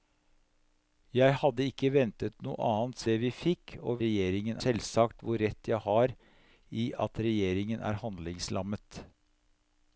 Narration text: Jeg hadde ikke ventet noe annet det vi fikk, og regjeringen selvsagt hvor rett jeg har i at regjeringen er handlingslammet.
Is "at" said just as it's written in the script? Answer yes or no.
yes